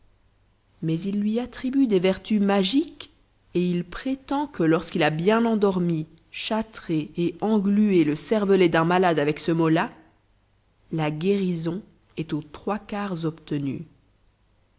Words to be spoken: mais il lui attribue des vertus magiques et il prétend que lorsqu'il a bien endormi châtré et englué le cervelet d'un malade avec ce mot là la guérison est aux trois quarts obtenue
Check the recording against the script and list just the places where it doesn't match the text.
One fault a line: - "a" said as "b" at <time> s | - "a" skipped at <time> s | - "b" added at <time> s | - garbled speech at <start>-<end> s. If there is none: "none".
none